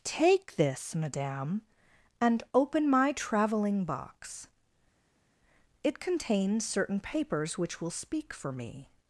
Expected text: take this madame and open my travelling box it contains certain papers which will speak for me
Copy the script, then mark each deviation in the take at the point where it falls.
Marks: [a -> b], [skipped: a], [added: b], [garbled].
take this madame and open my travelling box it contains certain papers which will speak for me